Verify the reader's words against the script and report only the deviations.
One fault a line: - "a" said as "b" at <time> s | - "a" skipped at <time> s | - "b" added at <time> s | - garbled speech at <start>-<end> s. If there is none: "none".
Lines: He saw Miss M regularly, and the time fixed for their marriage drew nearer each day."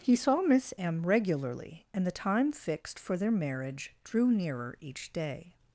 none